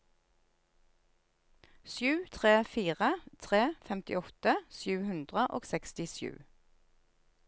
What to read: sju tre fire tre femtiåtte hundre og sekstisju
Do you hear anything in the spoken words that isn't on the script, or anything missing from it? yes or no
yes